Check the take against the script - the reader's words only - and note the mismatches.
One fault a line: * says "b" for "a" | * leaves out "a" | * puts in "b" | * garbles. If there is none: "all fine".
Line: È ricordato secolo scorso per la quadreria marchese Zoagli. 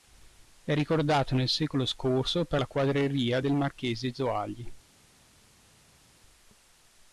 * puts in "nel"
* puts in "del"